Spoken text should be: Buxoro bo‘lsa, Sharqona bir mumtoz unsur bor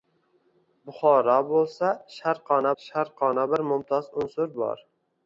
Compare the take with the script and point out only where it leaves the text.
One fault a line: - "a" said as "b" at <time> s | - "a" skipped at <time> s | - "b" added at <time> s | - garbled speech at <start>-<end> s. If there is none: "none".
- "Sharqona" added at 2.8 s